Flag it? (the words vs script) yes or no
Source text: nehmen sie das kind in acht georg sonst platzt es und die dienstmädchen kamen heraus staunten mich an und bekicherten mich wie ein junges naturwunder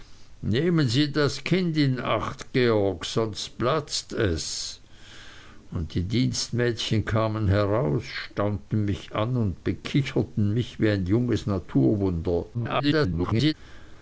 yes